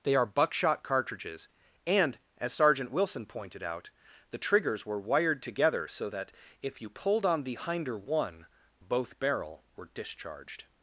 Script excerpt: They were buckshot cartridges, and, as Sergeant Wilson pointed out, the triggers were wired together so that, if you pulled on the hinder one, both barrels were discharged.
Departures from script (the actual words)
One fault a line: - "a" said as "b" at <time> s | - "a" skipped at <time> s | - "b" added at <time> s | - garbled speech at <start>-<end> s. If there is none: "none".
- "were" said as "are" at 0.1 s
- "barrels" said as "barrel" at 9.2 s